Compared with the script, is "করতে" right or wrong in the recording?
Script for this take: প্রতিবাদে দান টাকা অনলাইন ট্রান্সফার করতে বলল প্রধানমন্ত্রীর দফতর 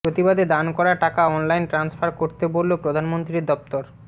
right